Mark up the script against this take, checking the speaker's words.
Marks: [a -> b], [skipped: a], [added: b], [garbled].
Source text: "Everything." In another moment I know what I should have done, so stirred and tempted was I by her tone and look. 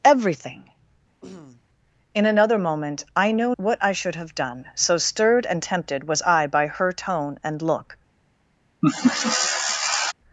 "Everything." In another moment I know what I should have done, so stirred and tempted was I by her tone and look.